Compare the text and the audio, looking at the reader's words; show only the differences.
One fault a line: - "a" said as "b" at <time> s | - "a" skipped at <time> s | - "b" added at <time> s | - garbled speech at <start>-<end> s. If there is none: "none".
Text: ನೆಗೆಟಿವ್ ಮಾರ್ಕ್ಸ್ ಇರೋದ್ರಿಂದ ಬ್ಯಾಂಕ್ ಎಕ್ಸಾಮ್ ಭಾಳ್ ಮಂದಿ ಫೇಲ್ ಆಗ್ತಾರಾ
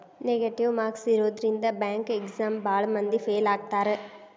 none